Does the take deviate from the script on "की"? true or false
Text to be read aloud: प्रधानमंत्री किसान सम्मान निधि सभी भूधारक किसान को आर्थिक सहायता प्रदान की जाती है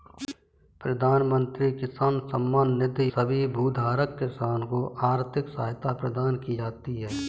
false